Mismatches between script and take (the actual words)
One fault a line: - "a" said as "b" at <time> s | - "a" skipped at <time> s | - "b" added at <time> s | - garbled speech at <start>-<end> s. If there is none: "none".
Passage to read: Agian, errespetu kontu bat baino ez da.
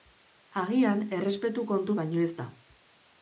- "bat" skipped at 2.0 s